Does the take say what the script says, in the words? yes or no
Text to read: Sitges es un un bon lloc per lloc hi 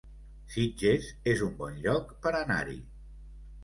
no